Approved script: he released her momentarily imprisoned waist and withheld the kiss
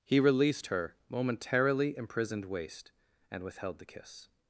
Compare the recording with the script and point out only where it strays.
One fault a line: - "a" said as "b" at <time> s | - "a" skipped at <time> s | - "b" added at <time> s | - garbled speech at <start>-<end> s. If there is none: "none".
none